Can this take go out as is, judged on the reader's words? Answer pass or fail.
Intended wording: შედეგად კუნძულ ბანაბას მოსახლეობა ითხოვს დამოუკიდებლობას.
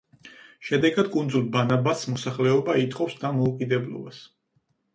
pass